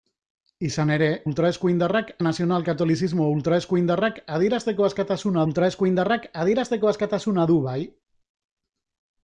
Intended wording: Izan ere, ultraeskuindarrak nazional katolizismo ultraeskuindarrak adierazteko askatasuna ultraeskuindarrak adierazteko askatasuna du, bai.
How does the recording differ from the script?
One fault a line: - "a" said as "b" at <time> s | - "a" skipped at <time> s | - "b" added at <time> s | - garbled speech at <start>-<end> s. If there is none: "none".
none